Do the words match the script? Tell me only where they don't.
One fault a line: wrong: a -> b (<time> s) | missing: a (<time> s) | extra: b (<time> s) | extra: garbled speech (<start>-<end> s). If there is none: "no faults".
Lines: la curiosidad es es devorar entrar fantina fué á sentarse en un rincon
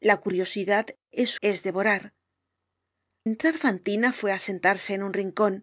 no faults